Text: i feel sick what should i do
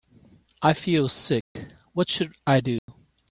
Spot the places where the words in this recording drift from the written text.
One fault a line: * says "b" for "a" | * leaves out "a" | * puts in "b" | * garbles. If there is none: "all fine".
all fine